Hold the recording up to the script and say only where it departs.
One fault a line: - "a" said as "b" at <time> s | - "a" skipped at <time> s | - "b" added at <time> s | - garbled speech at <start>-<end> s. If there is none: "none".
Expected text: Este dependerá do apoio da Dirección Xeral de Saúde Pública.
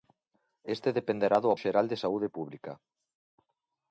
- "apoio da Dirección" skipped at 1.5 s